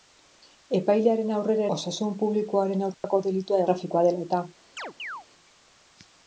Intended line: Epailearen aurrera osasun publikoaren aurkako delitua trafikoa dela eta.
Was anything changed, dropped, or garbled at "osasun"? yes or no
no